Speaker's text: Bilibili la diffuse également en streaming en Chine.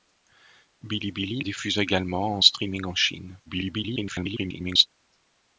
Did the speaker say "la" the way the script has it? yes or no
no